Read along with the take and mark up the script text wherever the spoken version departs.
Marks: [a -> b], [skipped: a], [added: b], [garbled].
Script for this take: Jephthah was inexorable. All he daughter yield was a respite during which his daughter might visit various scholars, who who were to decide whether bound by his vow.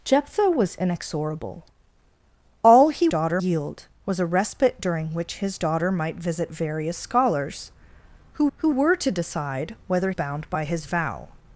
Jephthah was inexorable. All he daughter yield was a respite during which his daughter might visit various scholars, who who were to decide whether bound by his vow.